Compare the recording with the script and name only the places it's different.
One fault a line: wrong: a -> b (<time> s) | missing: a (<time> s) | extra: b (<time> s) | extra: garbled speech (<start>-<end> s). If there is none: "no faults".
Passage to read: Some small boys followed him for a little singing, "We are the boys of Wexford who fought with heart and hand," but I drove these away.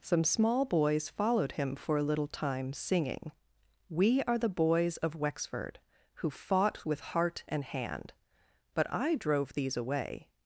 extra: time (2.3 s)